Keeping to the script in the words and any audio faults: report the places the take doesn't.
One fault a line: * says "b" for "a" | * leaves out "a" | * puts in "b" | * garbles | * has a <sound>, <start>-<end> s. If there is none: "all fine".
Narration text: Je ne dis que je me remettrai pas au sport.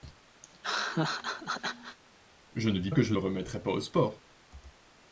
* has a laugh, 0.4-2.0 s